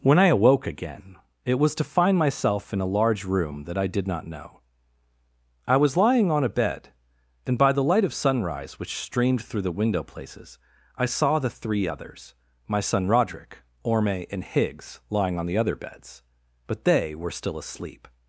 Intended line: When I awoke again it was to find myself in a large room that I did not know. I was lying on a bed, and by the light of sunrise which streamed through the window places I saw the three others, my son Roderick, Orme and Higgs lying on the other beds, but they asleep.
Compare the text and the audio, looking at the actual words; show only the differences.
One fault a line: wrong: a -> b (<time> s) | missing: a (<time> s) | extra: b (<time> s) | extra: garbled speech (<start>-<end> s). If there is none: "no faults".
extra: were still (17.1 s)